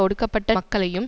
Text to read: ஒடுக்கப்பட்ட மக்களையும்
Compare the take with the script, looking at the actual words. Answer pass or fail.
pass